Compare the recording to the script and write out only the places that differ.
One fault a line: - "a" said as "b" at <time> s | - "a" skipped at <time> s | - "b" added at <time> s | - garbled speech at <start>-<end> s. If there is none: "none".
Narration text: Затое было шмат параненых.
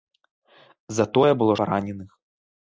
- "шмат" skipped at 1.6 s